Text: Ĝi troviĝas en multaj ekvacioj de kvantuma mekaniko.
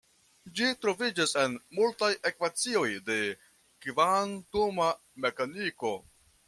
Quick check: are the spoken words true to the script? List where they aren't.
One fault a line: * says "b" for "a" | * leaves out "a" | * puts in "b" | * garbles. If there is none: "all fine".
all fine